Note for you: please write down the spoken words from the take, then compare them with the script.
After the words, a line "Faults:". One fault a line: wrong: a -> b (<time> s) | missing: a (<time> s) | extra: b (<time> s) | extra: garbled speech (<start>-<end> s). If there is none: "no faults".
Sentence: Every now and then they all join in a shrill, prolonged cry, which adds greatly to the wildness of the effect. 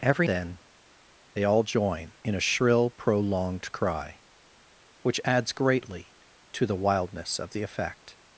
Every then they all join in a shrill, prolonged cry, which adds greatly to the wildness of the effect.
Faults:
missing: now and (0.3 s)